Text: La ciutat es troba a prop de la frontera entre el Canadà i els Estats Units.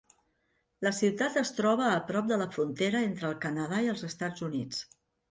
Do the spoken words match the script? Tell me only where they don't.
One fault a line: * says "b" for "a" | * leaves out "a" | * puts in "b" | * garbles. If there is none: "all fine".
all fine